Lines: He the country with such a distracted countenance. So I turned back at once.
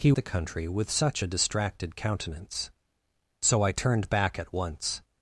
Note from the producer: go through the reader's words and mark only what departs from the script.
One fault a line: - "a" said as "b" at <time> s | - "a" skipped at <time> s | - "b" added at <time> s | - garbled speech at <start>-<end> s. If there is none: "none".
none